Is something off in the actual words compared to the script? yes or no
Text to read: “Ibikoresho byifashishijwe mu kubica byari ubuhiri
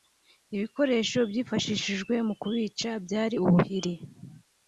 no